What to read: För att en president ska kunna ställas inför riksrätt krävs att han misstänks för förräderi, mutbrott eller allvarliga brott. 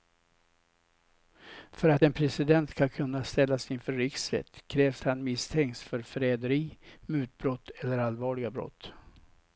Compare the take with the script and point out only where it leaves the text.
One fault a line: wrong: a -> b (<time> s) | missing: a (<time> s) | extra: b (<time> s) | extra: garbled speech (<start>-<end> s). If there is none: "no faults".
missing: att (5.0 s)